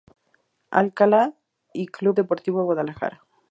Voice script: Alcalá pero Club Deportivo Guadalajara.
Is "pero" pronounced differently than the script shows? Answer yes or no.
yes